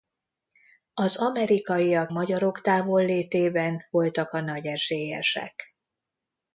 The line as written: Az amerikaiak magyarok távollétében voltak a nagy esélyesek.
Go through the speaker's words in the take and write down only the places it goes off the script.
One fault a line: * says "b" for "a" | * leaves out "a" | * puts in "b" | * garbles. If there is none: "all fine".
all fine